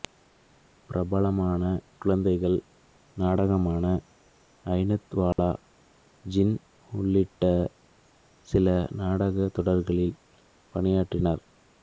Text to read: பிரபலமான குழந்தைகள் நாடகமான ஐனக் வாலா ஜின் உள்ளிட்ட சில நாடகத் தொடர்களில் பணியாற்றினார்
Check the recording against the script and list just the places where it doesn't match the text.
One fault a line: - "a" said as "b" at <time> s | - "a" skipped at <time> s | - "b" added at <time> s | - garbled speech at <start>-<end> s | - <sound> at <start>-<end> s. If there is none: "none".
- dropout at 5.3-5.4 s